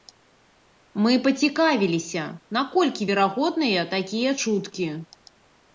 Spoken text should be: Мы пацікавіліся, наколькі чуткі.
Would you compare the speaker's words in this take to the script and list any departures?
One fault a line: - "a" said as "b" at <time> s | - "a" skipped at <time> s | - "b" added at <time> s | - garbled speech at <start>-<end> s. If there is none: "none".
- "верагодныя такія" added at 3.1 s